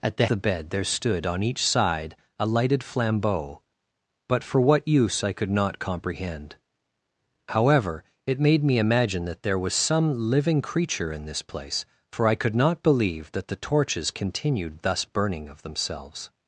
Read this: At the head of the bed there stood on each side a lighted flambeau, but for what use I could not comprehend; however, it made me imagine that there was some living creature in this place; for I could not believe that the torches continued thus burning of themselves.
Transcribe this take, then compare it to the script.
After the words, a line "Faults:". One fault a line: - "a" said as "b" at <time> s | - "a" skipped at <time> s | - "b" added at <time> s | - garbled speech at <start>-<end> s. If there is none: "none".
At the the bed there stood on each side a lighted flambeau, but for what use I could not comprehend; however, it made me imagine that there was some living creature in this place; for I could not believe that the torches continued thus burning of themselves.
Faults:
- "head of" skipped at 0.2 s